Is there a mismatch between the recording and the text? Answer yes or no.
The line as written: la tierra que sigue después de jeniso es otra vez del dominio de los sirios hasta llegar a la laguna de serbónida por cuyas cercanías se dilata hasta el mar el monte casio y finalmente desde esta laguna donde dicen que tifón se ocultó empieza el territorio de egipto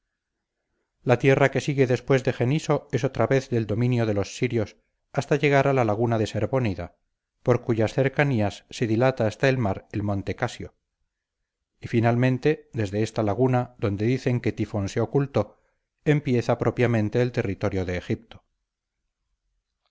yes